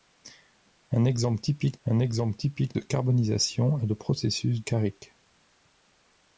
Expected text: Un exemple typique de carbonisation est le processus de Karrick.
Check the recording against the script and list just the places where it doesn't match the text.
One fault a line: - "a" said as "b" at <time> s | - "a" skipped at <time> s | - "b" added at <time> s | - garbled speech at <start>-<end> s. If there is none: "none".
- "un exemple typique" added at 1.9 s
- "de" skipped at 4.6 s